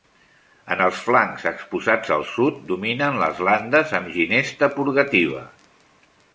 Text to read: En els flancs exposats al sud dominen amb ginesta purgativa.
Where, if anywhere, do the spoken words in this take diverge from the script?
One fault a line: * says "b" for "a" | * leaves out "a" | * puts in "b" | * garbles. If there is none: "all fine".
* puts in "les landes"